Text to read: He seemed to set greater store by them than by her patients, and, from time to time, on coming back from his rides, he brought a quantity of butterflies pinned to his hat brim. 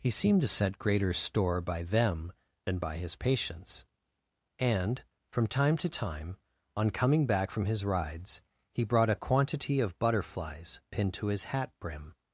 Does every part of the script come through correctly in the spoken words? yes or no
no